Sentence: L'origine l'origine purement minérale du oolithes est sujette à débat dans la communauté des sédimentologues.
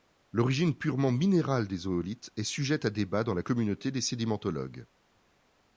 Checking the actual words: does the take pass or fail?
fail